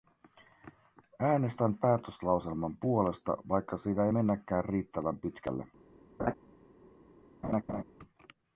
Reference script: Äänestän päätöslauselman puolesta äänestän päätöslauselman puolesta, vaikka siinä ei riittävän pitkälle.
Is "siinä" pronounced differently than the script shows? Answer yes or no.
no